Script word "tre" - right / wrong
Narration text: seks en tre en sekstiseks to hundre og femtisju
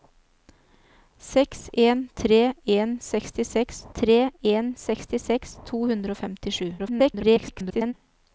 right